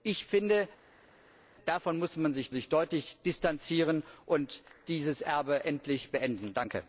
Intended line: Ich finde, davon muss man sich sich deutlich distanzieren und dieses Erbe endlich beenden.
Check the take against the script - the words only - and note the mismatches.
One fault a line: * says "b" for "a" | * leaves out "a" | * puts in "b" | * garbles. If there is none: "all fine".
all fine